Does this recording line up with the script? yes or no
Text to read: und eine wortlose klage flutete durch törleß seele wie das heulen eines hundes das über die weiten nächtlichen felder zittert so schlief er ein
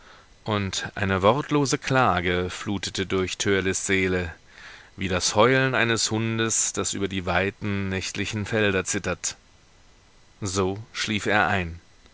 yes